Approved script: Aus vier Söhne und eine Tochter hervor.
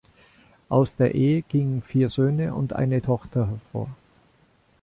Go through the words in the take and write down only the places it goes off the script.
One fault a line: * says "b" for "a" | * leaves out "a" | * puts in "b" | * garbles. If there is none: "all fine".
* puts in "der Ehe gingen"